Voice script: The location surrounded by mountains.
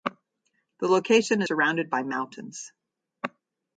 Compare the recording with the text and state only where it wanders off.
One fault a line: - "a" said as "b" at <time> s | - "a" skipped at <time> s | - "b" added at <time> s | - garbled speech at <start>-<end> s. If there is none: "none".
none